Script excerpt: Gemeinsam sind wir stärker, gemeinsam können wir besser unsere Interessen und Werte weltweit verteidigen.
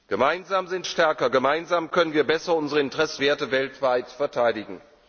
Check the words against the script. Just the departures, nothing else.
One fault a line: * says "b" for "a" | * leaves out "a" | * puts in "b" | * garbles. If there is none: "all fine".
* leaves out "wir"
* leaves out "und"